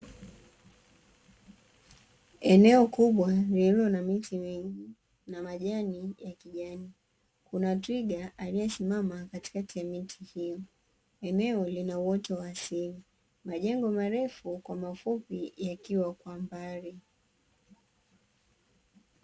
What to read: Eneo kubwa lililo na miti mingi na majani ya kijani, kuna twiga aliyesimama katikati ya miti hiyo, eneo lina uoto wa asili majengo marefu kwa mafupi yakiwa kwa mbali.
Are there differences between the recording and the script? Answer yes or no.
no